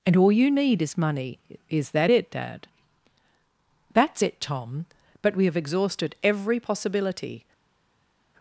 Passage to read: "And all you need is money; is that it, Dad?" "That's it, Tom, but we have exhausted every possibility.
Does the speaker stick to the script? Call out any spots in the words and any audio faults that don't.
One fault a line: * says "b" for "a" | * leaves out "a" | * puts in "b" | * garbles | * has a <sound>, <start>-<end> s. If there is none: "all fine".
all fine